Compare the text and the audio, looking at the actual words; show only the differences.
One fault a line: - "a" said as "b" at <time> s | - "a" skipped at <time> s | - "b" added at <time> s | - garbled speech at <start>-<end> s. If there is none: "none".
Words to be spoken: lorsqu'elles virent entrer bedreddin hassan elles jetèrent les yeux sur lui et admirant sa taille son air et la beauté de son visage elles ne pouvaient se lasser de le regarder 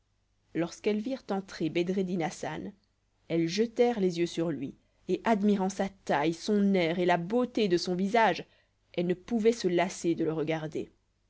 none